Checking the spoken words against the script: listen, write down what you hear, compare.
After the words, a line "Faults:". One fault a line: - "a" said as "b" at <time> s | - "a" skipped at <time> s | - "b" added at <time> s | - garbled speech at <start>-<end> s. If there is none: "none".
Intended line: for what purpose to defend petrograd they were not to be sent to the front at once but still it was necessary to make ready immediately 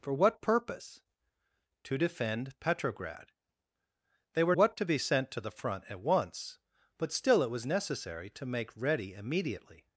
for what purpose to defend petrograd they were what to be sent to the front at once but still it was necessary to make ready immediately
Faults:
- "not" said as "what" at 4.5 s